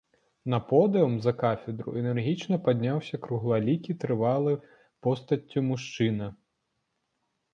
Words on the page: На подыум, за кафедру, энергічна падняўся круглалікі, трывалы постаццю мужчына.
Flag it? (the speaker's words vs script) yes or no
no